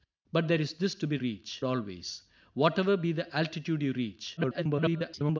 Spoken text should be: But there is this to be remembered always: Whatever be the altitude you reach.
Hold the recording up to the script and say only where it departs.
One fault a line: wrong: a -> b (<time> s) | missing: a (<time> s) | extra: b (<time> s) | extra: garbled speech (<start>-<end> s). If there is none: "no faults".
wrong: remembered -> reach (1.2 s)
extra: garbled speech (4.4-5.4 s)